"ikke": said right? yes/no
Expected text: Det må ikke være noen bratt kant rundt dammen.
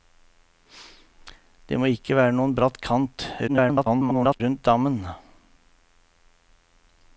yes